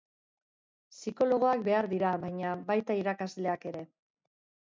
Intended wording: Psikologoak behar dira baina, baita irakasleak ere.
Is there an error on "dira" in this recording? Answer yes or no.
no